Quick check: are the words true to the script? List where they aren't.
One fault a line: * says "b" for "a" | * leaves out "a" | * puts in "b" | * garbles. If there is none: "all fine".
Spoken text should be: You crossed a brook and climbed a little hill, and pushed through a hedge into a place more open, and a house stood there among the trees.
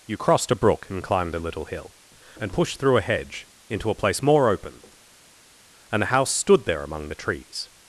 all fine